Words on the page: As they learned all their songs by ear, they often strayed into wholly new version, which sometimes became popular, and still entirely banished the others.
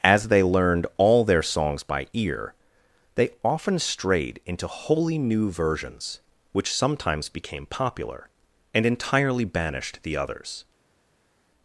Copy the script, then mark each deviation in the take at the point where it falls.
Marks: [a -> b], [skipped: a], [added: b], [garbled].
As they learned all their songs by ear, they often strayed into wholly new [version, -> versions] which sometimes became popular, and [skipped: still] entirely banished the others.